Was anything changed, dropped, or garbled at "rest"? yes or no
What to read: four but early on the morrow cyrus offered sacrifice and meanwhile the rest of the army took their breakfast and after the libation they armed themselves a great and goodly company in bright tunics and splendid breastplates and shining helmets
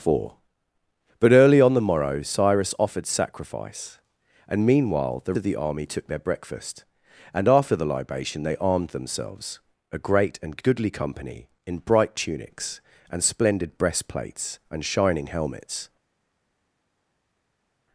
yes